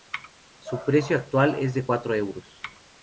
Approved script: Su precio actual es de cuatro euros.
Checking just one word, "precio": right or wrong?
right